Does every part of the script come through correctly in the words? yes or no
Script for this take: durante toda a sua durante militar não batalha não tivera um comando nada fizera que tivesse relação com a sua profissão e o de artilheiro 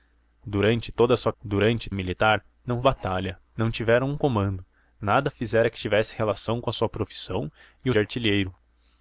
yes